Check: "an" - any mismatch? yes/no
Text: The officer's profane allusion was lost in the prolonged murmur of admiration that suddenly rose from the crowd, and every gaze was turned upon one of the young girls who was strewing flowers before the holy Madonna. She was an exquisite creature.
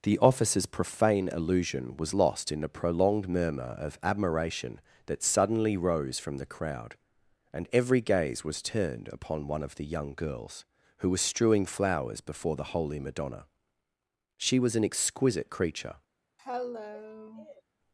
no